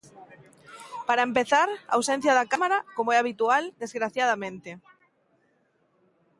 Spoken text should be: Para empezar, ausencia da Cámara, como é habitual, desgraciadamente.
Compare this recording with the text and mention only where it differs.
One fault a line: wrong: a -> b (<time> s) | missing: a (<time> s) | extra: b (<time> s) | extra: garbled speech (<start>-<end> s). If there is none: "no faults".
no faults